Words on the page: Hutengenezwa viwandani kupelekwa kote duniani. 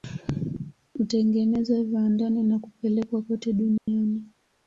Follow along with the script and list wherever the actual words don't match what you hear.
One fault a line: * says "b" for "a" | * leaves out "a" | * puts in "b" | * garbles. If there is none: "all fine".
* puts in "na"